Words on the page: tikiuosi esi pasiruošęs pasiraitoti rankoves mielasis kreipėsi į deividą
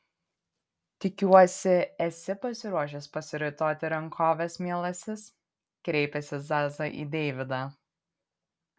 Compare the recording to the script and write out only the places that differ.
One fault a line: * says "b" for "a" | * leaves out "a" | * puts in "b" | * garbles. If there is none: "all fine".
* puts in "zaza"